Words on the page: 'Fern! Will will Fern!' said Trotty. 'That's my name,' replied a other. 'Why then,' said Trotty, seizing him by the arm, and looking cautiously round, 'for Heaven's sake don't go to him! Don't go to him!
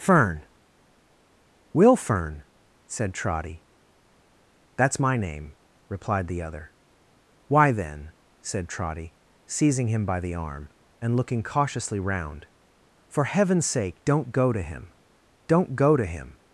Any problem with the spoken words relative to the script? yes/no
yes